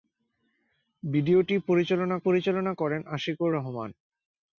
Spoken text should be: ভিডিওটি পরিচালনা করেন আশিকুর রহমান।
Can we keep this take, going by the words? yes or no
no